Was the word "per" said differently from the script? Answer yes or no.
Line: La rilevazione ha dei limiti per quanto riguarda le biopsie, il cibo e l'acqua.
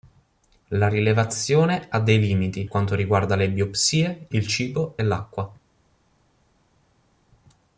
yes